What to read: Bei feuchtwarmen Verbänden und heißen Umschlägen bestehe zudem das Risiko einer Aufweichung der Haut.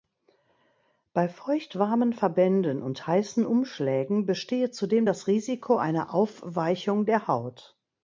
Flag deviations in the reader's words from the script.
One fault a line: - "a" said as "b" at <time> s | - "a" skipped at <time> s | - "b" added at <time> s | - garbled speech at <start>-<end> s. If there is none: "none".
none